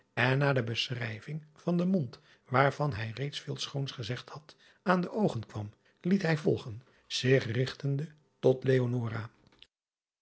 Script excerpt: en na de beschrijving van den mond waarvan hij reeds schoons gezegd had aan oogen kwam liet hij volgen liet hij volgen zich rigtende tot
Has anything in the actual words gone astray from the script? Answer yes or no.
yes